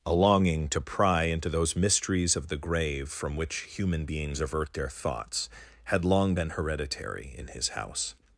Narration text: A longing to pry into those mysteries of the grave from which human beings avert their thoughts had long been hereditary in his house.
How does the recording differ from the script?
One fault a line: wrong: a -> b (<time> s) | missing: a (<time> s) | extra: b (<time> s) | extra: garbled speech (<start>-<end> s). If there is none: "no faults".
no faults